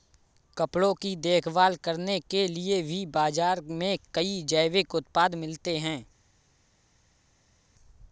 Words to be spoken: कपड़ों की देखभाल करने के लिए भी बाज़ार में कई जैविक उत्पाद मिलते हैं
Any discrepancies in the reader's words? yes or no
no